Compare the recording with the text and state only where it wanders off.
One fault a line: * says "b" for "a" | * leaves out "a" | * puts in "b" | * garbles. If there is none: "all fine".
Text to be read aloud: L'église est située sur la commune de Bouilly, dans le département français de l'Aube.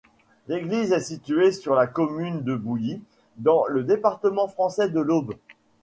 all fine